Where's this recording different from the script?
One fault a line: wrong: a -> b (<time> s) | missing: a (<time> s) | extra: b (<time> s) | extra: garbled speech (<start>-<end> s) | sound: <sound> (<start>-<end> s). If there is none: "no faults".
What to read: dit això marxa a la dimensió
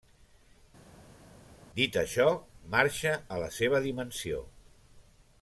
extra: seva (3.6 s)